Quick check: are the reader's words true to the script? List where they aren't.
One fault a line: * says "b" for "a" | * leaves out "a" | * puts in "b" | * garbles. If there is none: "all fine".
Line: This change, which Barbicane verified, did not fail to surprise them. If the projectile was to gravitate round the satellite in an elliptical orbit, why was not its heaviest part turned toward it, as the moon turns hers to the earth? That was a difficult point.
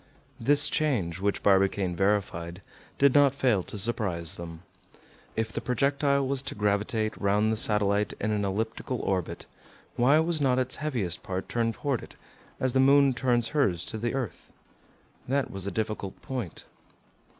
all fine